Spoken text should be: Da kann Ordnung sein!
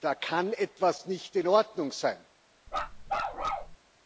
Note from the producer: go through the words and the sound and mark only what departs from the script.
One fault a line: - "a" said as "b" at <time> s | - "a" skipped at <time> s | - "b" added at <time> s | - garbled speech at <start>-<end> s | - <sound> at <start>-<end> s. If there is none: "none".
- "etwas nicht in" added at 0.5 s
- bark at 2.7-3.8 s